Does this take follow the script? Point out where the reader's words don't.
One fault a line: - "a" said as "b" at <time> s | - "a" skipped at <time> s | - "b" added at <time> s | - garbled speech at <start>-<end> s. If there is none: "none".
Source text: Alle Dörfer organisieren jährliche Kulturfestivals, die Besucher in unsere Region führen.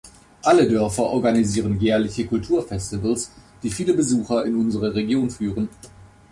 - "viele" added at 3.7 s